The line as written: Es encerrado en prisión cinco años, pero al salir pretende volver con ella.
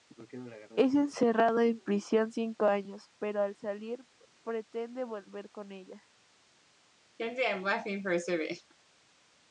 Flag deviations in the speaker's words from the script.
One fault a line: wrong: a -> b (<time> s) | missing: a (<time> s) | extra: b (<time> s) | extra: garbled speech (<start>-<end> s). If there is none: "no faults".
no faults